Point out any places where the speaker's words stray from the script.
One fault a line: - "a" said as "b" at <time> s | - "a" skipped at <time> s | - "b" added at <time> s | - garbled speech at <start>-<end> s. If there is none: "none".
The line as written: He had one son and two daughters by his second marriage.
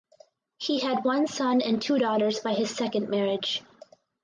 none